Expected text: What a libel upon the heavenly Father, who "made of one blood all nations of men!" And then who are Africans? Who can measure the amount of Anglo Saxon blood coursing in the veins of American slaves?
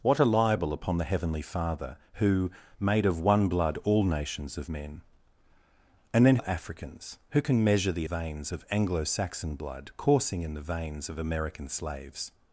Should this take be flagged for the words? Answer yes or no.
yes